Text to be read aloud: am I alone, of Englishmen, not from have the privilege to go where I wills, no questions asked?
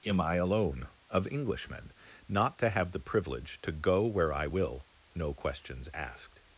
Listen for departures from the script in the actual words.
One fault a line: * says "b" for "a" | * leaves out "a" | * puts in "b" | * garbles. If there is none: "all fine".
* says "to" for "from"
* says "will" for "wills"